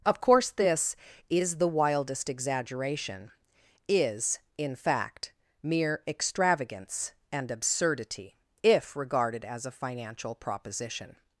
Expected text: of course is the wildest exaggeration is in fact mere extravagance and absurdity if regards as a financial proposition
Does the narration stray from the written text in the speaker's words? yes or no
yes